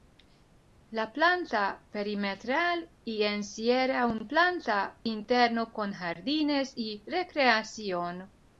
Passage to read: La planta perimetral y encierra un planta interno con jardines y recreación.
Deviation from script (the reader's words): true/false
false